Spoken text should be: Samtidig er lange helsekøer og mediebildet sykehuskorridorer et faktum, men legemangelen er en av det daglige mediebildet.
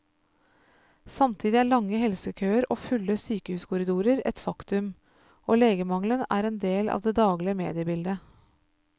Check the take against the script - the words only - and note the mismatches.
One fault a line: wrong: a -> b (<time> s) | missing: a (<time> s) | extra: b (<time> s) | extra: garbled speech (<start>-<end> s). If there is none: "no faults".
wrong: mediebildet -> fulle (2.9 s)
wrong: men -> og (5.5 s)
extra: del (6.6 s)